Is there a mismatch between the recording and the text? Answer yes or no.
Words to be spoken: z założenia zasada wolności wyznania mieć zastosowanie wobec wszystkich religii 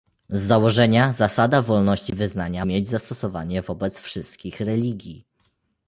no